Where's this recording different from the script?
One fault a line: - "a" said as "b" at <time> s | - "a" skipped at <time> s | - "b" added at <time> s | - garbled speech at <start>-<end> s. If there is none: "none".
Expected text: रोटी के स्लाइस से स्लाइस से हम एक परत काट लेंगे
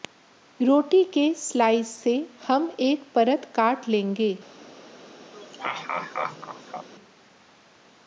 - "स्लाइस से" skipped at 2.1 s